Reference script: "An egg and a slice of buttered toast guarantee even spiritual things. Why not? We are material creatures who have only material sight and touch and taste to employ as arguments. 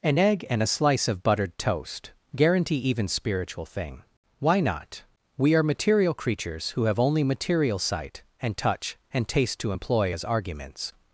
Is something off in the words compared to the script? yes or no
yes